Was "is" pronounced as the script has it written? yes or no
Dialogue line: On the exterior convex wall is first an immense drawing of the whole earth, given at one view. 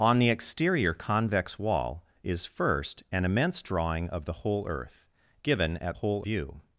yes